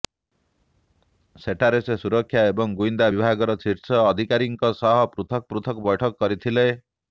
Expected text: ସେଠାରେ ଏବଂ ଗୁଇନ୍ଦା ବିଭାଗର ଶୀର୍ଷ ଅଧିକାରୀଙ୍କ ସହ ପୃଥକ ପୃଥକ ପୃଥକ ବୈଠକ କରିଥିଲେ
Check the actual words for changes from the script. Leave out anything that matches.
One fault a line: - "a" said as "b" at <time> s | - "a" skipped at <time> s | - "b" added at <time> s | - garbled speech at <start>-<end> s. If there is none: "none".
- "ସେ ସୁରକ୍ଷା" added at 1.8 s
- "ପୃଥକ" skipped at 5.9 s